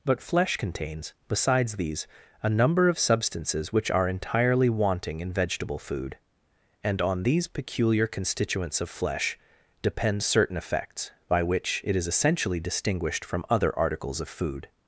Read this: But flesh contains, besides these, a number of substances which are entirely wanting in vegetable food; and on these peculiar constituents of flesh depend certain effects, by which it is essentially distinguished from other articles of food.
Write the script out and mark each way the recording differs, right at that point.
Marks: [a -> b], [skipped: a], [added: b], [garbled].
But flesh contains, besides these, a number of substances which are entirely wanting in vegetable food; and on these peculiar constituents of flesh depend certain effects, by which it is essentially distinguished from other articles of food.